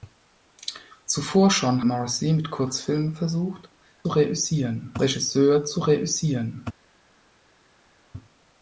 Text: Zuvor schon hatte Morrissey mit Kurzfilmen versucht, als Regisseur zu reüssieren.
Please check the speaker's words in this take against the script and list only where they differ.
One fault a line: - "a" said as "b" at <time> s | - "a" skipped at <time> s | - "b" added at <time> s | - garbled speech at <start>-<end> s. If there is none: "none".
- "hatte" skipped at 1.9 s
- "als" said as "reüssieren" at 4.1 s